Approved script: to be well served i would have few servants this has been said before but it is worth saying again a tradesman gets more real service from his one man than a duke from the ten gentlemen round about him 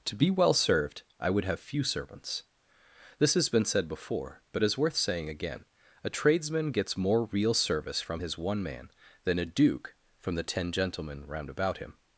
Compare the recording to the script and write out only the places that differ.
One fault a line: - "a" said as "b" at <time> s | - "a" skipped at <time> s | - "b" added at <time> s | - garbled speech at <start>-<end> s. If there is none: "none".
- "it" skipped at 4.6 s